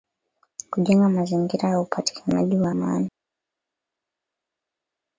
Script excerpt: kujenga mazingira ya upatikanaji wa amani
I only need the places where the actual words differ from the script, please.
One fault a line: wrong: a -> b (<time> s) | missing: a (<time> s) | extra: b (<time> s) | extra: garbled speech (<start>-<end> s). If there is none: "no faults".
no faults